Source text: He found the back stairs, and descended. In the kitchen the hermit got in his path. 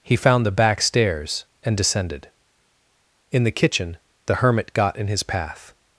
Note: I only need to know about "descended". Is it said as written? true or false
true